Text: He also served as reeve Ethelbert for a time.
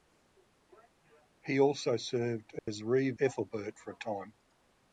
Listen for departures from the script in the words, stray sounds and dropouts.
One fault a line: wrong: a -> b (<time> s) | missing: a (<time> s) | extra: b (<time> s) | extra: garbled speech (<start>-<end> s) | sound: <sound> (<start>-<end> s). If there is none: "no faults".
sound: dropout (2.6-2.7 s)